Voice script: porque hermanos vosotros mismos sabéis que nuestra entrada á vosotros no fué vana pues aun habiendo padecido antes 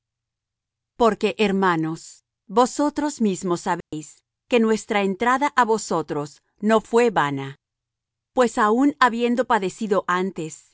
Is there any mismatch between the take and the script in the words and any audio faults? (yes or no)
yes